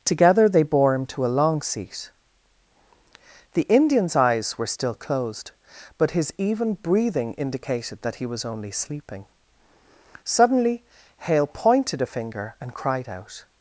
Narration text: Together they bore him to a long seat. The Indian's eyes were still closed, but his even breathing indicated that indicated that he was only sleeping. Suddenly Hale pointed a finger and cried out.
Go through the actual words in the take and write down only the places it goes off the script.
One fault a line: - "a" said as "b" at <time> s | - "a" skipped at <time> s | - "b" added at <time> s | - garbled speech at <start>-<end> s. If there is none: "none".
- "indicated that" skipped at 8.2 s